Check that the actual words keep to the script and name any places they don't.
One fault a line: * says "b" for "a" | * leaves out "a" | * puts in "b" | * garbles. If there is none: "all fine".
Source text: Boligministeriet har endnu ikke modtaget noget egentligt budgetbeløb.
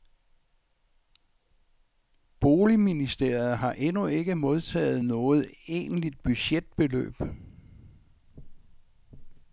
all fine